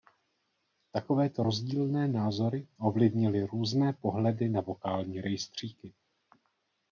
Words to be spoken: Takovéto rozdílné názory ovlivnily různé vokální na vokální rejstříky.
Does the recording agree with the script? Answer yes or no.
no